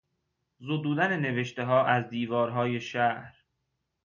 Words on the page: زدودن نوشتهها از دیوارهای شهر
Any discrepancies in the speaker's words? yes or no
no